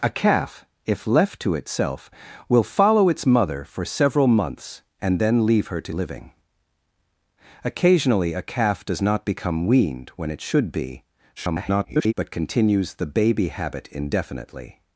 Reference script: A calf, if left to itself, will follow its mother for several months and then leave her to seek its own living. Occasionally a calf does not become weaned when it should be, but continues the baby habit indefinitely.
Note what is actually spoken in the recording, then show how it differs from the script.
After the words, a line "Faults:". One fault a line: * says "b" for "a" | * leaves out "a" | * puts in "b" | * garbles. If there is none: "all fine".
A calf, if left to itself, will follow its mother for several months and then leave her to living. Occasionally a calf does not become weaned when it should be, [garbled] but continues the baby habit indefinitely.
Faults:
* leaves out "seek its own"
* garbles